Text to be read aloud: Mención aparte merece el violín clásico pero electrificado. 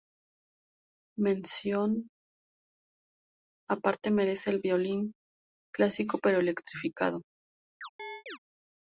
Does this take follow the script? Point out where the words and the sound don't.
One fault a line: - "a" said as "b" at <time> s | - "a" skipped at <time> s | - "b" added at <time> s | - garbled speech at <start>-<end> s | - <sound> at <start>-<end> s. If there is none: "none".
- chirp at 7.8-8.4 s